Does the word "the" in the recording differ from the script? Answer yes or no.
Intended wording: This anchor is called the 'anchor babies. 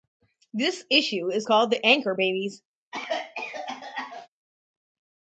no